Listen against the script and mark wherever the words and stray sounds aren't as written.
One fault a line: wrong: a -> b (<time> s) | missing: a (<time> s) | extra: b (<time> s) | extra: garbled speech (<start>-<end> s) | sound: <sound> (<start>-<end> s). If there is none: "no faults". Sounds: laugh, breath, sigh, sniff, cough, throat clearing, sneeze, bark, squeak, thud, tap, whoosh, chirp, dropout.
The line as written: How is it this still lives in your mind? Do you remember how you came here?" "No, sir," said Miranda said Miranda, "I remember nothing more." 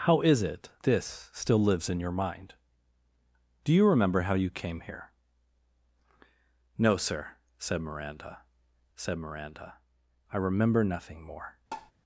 sound: tap (11.7-11.9 s)